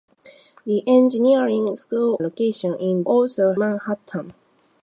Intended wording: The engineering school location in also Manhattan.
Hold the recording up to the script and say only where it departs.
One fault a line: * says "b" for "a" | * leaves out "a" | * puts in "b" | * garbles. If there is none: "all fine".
all fine